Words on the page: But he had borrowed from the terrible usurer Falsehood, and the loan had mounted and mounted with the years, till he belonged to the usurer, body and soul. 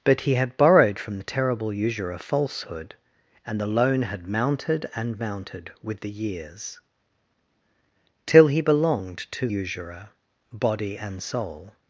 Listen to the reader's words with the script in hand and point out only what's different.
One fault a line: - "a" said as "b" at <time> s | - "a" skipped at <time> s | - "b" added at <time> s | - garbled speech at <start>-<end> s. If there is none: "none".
- "the" skipped at 9.5 s